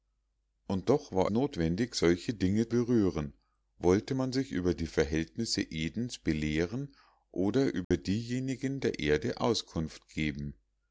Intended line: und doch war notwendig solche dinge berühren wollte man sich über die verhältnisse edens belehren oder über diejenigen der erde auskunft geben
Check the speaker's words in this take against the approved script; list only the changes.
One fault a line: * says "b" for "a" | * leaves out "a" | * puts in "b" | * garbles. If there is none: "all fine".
all fine